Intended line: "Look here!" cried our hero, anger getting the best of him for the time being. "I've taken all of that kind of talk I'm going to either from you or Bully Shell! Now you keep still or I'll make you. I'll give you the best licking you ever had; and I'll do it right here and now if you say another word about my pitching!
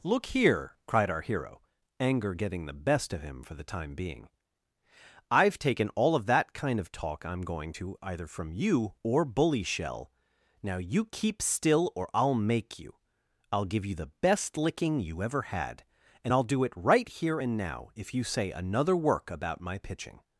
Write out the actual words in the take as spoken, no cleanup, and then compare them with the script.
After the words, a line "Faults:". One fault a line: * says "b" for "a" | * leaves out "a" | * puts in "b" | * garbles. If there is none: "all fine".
"Look here!" cried our hero, anger getting the best of him for the time being. "I've taken all of that kind of talk I'm going to either from you or Bully Shell! Now you keep still or I'll make you. I'll give you the best licking you ever had; and I'll do it right here and now if you say another work about my pitching!
Faults:
* says "work" for "word"